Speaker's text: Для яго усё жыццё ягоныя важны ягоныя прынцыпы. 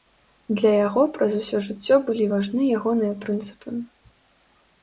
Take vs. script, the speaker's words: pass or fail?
fail